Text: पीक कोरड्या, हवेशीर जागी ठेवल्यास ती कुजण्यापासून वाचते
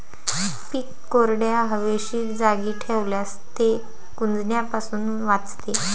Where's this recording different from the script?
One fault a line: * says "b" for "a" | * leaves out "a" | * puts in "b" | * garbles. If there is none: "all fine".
* says "ते" for "ती"